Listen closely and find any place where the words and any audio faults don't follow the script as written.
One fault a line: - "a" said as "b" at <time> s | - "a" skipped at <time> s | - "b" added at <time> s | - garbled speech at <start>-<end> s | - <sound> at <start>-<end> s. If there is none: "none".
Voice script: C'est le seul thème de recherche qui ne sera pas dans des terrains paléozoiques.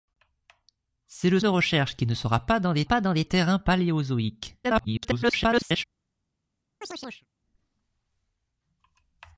- "seul thème" skipped at 1.4 s
- "pas dans des" added at 2.8 s
- garbled speech at 4.6-5.8 s
- chirp at 6.8-7.3 s